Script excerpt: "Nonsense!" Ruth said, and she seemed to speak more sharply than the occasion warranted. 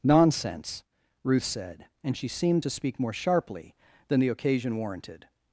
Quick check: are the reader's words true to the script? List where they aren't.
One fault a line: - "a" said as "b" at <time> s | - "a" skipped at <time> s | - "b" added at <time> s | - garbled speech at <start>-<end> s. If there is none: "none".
none